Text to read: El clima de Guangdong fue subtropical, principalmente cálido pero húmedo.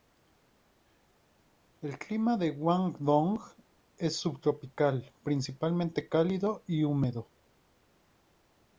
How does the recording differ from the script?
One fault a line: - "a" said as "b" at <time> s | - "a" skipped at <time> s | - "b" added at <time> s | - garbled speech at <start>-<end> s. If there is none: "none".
- "fue" said as "es" at 4.0 s
- "pero" said as "y" at 6.7 s